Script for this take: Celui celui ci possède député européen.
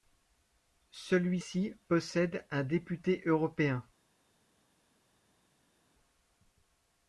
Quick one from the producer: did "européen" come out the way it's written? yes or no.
yes